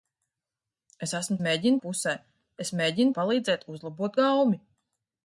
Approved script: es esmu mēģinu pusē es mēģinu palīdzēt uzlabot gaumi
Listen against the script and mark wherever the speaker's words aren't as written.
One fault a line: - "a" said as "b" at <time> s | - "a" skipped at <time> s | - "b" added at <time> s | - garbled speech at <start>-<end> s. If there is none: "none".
none